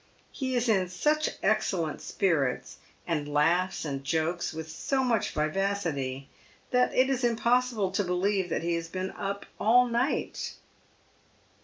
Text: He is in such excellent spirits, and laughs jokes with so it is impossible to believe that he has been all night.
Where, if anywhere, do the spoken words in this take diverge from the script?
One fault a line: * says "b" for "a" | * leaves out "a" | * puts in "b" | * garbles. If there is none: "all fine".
* puts in "and"
* puts in "much vivacity that"
* puts in "up"